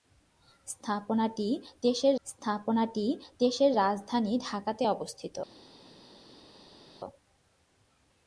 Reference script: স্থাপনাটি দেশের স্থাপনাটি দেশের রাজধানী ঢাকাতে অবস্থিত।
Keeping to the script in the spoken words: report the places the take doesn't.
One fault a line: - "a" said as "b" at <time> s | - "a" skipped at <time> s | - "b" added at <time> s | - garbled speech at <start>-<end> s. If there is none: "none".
none